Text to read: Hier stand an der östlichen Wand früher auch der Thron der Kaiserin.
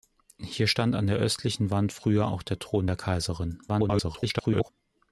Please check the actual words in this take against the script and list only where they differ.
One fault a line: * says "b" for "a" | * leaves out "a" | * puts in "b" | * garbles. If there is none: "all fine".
* garbles